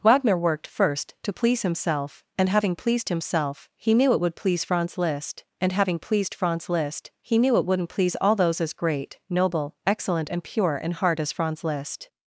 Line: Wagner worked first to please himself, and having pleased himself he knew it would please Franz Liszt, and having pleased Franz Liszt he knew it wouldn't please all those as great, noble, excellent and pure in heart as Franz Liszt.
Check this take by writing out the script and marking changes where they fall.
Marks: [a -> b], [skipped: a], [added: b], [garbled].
Wagner worked first to please himself, and having pleased himself he knew it would please Franz Liszt, and having pleased Franz Liszt he knew it wouldn't please all those as great, noble, excellent and pure in heart as Franz Liszt.